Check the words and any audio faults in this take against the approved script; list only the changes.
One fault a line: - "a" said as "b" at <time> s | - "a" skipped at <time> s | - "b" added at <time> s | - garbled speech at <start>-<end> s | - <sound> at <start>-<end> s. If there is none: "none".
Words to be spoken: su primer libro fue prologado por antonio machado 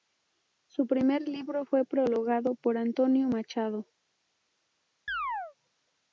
- chirp at 5.1-5.5 s